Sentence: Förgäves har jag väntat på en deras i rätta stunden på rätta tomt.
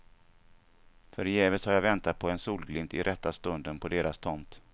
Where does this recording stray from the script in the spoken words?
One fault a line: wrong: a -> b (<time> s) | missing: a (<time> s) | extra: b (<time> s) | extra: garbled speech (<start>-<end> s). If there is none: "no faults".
wrong: deras -> solglimt (2.4 s)
wrong: rätta -> deras (3.9 s)